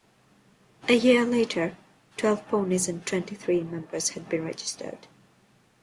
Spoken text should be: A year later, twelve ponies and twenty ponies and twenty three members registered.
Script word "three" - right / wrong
wrong